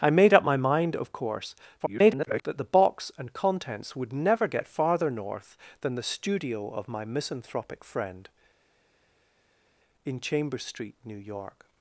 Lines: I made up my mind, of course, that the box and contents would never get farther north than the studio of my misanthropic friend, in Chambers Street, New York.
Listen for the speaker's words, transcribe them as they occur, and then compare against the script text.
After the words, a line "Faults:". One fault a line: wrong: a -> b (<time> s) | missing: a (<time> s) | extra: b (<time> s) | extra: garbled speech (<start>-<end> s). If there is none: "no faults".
I made up my mind, of course, [garbled] that the box and contents would never get farther north than the studio of my misanthropic friend, in Chambers Street, New York.
Faults:
extra: garbled speech (1.8-2.4 s)